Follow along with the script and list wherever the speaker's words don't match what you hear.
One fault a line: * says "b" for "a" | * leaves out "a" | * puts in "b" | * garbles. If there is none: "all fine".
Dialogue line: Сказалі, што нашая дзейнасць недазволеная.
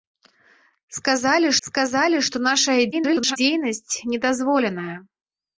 * puts in "сказалі"
* garbles